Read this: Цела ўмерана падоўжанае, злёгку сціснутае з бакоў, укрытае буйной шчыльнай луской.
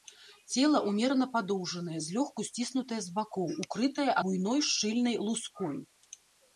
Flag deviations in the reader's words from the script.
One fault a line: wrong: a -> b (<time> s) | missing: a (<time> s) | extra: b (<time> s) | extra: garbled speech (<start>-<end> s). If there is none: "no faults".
no faults